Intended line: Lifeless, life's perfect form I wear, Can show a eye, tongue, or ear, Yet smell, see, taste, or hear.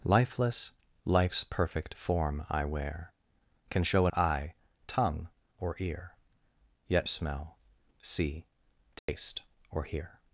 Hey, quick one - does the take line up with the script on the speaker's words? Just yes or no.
yes